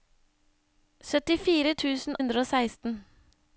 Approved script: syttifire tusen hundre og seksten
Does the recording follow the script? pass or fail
pass